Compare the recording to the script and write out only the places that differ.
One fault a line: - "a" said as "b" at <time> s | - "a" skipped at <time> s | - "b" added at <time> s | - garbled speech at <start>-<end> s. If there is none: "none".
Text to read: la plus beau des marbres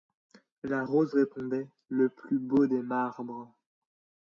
- "rose répondait le" added at 0.8 s